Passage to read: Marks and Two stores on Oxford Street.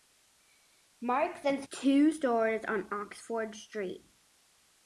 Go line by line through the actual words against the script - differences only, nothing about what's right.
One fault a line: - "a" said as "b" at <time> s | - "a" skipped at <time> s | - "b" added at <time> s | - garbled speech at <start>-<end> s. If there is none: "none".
none